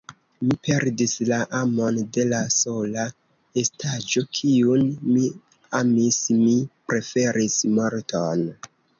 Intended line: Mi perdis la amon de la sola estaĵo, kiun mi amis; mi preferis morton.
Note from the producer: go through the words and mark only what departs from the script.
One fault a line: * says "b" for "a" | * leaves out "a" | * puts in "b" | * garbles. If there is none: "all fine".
all fine